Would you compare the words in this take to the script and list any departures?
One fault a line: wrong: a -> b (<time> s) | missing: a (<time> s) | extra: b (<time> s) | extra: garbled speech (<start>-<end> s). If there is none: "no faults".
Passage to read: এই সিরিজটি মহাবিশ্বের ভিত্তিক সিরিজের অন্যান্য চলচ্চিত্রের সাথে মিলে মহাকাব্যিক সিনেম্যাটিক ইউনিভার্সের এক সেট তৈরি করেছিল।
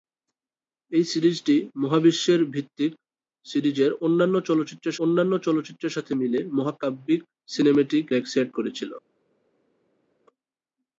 extra: অন্যান্য চলচ্চিত্রের (5.0 s)
missing: ইউনিভার্সের (8.0 s)
missing: তৈরি (8.5 s)